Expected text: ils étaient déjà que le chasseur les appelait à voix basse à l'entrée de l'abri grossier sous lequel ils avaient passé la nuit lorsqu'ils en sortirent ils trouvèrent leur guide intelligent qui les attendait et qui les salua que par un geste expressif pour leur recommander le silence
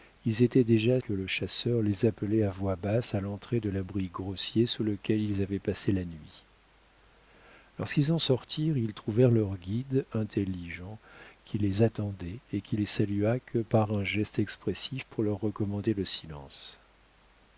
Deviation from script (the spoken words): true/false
false